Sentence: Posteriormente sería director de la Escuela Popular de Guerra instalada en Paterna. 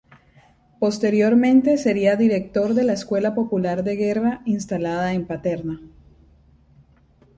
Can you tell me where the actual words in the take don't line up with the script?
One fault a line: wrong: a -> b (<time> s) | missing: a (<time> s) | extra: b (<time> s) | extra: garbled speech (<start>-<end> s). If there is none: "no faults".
no faults